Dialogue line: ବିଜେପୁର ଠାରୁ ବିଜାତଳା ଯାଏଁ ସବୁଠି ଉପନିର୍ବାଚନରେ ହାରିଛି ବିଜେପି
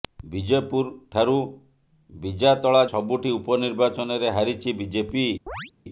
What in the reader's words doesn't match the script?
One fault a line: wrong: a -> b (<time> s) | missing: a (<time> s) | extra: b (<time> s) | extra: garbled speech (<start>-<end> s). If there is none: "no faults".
missing: ଯାଏଁ (2.8 s)